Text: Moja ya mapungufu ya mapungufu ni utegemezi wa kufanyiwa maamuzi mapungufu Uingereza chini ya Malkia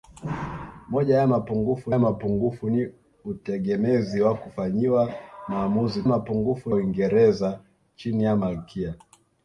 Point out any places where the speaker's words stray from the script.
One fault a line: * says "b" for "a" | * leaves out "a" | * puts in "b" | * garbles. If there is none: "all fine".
all fine